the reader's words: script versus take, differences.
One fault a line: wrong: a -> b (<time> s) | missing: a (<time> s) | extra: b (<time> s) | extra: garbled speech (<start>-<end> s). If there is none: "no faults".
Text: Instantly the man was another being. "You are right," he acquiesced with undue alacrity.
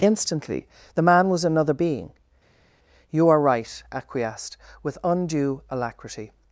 missing: he (3.8 s)